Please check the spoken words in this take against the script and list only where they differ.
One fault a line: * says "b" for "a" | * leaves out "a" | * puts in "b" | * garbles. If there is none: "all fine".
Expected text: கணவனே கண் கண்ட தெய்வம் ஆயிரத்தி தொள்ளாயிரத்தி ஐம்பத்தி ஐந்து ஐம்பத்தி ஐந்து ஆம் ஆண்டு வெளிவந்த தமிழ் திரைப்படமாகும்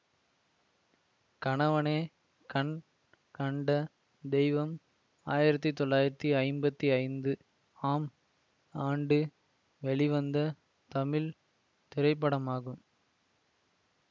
* leaves out "ஐம்பத்தி ஐந்து"